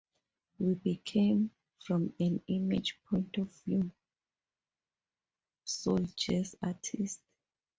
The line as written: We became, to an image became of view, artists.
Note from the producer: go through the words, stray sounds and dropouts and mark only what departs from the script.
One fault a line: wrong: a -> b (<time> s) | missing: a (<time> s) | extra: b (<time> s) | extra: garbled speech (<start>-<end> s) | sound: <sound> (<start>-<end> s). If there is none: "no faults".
wrong: to -> from (1.8 s)
wrong: became -> point (3.0 s)
extra: soul jazz (5.7 s)